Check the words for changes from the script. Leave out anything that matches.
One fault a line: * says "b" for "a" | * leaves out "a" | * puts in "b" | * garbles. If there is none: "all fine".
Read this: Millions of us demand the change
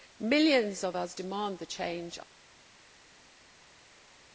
all fine